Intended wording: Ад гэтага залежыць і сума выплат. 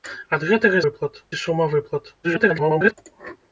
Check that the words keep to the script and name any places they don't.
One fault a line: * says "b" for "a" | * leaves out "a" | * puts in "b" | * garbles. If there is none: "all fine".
* says "выплат" for "залежыць"
* garbles